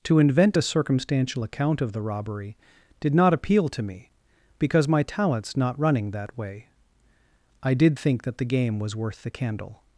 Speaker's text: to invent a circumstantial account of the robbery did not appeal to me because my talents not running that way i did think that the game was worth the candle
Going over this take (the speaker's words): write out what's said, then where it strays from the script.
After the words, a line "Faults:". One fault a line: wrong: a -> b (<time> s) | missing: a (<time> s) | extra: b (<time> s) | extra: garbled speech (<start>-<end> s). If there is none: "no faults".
to invent a circumstantial account of the robbery did not appeal to me because my talents not running that way i did think that the game was worth the candle
Faults:
no faults